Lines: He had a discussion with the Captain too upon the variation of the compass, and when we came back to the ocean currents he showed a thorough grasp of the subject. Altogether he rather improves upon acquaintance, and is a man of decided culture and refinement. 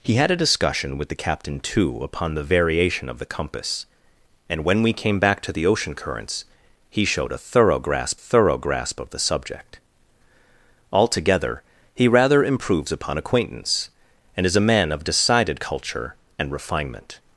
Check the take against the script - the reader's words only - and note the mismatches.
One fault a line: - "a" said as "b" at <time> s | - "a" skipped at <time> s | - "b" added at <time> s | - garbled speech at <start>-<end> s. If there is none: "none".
- "thorough grasp" added at 8.1 s